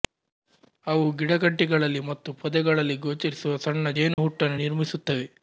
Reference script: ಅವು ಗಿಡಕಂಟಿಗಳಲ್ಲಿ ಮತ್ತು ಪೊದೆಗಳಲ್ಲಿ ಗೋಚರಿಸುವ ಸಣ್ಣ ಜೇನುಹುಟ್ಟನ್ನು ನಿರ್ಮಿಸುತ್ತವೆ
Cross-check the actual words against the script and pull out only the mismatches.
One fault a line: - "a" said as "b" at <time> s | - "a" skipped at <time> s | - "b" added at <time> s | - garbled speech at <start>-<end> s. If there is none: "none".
none